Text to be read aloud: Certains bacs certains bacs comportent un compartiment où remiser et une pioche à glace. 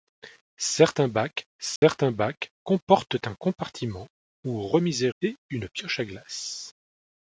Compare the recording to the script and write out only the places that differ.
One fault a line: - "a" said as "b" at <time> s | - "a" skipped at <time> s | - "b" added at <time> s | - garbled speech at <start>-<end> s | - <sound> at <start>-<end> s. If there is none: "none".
- dropout at 1.8-1.8 s